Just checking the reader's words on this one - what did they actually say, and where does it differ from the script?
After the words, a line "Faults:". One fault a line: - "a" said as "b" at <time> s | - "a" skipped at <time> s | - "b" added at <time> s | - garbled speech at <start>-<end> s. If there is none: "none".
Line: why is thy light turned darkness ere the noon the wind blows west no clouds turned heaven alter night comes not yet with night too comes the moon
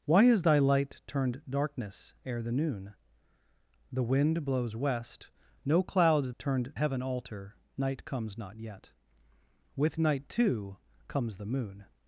why is thy light turned darkness ere the noon the wind blows west no clouds turned heaven alter night comes not yet with night too comes the moon
Faults:
none